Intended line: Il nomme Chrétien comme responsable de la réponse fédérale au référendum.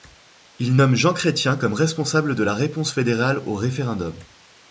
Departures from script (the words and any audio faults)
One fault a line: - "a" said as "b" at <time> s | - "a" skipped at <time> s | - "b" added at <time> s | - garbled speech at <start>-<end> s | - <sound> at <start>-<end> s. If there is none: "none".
- "Jean" added at 1.0 s